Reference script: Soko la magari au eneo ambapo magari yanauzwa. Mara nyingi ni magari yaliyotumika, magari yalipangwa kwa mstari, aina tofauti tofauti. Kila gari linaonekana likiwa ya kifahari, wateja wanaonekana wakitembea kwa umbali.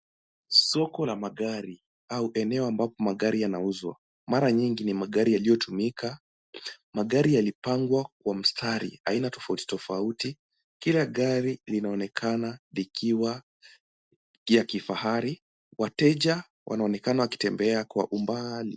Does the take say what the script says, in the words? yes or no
yes